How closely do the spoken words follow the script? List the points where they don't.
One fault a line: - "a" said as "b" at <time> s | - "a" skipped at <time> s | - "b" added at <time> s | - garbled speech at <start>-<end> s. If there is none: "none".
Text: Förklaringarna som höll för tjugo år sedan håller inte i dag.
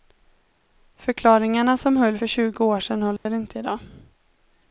none